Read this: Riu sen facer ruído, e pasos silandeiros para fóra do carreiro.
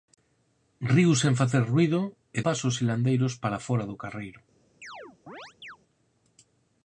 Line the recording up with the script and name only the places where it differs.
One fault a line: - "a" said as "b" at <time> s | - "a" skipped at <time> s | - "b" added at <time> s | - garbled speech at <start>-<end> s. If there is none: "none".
none